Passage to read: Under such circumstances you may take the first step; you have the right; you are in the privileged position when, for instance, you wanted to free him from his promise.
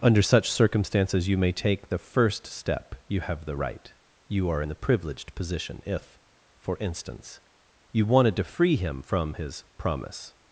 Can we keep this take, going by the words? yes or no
no